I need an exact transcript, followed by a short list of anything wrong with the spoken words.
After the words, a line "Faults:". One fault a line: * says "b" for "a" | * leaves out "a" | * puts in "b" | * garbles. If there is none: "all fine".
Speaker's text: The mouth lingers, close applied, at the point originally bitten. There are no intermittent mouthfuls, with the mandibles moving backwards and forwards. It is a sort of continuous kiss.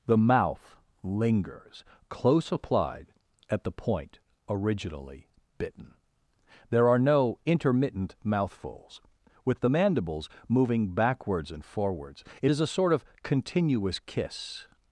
The mouth lingers, close applied, at the point originally bitten. There are no intermittent mouthfuls, with the mandibles moving backwards and forwards. It is a sort of continuous kiss.
Faults:
all fine